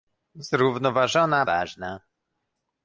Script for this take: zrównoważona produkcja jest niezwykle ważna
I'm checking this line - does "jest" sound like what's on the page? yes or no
no